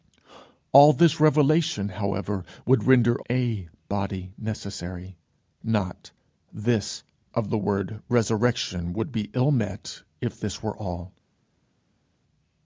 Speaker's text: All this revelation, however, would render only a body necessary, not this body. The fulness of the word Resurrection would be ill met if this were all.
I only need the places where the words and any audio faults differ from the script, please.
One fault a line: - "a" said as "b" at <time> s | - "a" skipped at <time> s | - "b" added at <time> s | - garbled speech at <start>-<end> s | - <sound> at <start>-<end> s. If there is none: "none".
- "only" skipped at 3.2 s
- "body The fulness" skipped at 7.0 s